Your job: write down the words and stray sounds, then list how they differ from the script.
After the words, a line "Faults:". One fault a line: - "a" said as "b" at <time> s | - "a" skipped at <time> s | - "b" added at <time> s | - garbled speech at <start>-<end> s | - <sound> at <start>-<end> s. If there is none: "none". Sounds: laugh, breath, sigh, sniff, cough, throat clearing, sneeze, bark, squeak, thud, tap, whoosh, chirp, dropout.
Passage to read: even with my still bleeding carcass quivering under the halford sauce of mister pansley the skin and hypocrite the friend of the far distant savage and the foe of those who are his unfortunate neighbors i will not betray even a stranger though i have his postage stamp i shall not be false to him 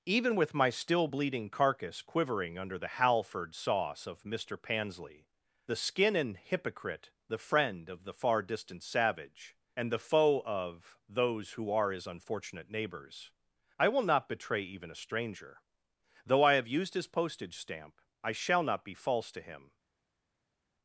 even with my still bleeding carcass quivering under the halford sauce of mister pansley the skin and hypocrite the friend of the far distant savage and the foe of those who are his unfortunate neighbors i will not betray even a stranger though i have used his postage stamp i shall not be false to him
Faults:
- "used" added at 16.7 s